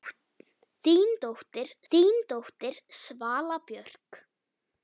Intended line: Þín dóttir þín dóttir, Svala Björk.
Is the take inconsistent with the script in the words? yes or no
no